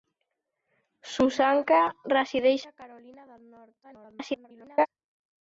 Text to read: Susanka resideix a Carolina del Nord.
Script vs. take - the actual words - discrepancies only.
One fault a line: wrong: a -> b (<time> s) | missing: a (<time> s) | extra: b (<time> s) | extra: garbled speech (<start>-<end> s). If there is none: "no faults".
extra: garbled speech (3.8-4.9 s)